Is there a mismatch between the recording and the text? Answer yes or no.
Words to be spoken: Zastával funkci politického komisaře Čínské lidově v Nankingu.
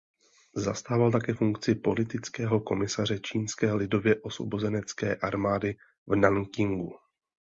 yes